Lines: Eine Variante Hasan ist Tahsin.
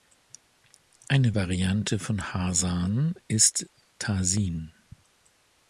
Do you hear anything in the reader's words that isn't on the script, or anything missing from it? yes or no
yes